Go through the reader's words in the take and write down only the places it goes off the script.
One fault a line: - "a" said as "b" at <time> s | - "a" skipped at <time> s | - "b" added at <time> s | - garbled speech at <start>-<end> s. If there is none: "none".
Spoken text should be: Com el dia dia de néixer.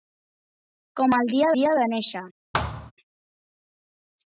none